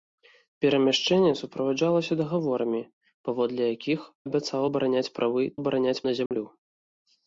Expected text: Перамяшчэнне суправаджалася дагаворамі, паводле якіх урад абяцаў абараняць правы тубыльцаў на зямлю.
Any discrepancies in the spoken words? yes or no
yes